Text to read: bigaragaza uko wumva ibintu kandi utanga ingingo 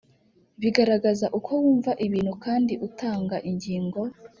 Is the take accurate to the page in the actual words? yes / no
yes